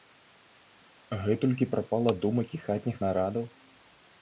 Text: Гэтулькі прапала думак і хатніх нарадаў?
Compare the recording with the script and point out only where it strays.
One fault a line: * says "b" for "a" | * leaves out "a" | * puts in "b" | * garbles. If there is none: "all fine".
all fine